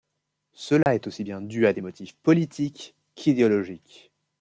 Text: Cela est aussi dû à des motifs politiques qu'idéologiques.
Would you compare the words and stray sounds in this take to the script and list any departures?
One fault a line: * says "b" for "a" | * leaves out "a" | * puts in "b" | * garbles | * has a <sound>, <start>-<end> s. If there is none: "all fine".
* has a dropout, 0.8-0.9 s
* puts in "bien"